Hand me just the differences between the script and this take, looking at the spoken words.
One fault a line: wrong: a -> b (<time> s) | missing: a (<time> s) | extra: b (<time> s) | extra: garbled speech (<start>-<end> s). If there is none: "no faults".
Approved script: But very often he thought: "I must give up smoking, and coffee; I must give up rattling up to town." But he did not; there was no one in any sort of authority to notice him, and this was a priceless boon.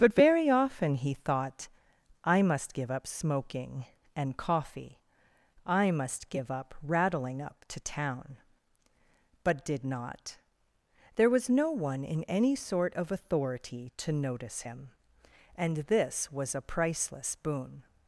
missing: he (9.6 s)